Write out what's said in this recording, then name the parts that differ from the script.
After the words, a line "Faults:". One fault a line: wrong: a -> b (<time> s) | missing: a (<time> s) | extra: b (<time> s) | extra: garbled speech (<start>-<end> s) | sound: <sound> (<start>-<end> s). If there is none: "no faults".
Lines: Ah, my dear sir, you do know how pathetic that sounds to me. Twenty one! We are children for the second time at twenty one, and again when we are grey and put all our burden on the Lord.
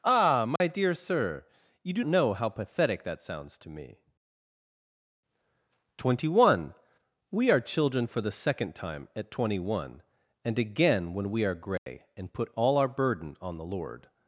Ah, my dear sir, you do know how pathetic that sounds to me. Twenty one! We are children for the second time at twenty one, and again when we are grey and put all our burden on the Lord.
Faults:
sound: dropout (0.6-0.6 s)
sound: dropout (11.8-11.9 s)